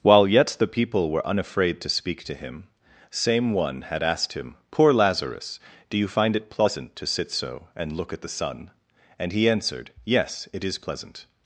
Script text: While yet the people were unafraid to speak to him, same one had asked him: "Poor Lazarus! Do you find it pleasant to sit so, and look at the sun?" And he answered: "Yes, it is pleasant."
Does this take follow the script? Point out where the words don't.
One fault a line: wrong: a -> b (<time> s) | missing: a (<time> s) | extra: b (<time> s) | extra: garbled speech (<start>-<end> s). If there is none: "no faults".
no faults